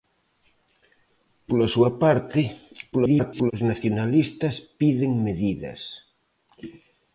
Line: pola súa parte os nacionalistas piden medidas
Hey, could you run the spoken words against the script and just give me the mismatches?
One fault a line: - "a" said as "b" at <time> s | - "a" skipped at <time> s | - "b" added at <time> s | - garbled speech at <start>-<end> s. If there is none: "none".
- garbled speech at 2.9-3.5 s